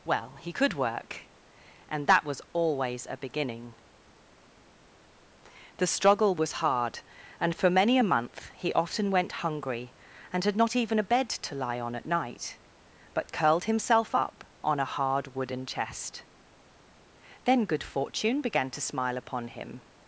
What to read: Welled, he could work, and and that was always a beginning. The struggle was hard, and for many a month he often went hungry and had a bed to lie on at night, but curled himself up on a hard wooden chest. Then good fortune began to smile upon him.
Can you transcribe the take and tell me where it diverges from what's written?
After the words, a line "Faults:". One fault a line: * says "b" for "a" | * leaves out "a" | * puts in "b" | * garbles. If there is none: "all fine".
Well, he could work, and that was always a beginning. The struggle was hard, and for many a month he often went hungry and had not even a bed to lie on at night, but curled himself up on a hard wooden chest. Then good fortune began to smile upon him.
Faults:
* says "Well" for "Welled"
* leaves out "and"
* puts in "not even"